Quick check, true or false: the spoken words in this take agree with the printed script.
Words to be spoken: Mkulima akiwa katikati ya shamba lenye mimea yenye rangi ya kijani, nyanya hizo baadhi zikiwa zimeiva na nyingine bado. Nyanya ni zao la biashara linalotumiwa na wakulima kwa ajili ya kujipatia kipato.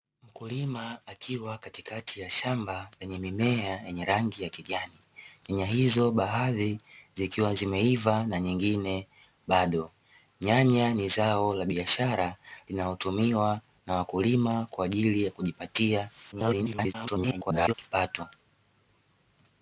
false